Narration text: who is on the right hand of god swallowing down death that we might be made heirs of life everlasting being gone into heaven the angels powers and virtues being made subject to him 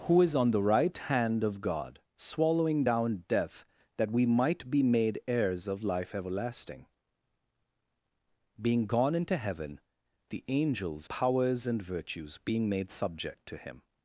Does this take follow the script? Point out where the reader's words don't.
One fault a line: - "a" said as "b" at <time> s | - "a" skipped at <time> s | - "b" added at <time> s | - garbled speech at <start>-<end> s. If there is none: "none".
none